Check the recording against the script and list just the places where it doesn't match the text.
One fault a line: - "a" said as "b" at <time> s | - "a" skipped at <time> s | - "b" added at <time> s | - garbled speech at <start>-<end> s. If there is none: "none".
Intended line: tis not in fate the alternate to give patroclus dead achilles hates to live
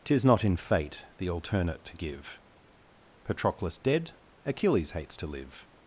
none